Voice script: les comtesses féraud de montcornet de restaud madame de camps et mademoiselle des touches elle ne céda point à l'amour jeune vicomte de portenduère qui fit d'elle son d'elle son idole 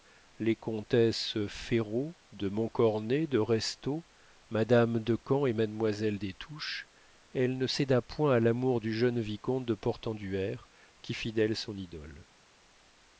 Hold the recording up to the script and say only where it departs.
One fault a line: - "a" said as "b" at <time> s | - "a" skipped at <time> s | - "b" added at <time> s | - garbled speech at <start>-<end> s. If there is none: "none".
- "du" added at 8.8 s
- "d'elle son" skipped at 11.8 s